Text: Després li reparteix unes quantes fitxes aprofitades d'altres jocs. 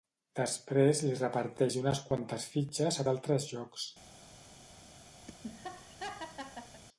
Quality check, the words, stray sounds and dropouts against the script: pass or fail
fail